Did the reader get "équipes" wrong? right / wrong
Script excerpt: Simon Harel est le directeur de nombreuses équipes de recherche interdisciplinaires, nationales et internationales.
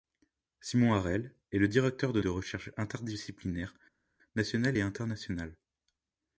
wrong